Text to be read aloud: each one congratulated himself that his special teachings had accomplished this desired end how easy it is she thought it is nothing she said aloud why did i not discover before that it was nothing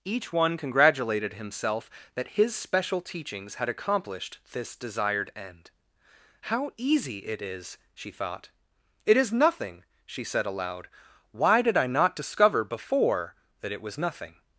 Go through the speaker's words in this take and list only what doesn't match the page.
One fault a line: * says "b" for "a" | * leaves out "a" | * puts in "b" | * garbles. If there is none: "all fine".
all fine